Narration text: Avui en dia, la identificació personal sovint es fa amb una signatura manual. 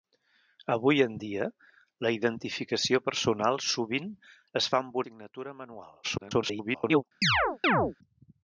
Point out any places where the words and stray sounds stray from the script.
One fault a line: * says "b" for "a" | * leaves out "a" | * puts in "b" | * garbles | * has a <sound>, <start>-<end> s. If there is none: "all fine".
* leaves out "una"
* garbles
* has a chirp, 7.2-8.0 s